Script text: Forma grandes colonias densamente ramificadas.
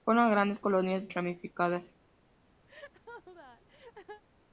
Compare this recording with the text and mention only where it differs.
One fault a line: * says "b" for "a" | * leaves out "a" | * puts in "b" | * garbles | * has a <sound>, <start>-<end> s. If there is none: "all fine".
* leaves out "densamente"
* has a laugh, 2.7-4.2 s